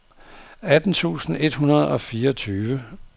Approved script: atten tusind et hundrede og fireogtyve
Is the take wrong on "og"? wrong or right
right